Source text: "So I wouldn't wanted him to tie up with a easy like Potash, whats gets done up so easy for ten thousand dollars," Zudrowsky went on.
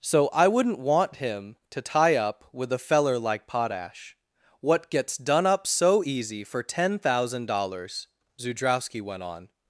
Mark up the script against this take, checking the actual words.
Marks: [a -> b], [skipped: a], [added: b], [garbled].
"So I wouldn't [wanted -> want] him to tie up with a [easy -> feller] like Potash, [whats -> what] gets done up so easy for ten thousand dollars," Zudrowsky went on.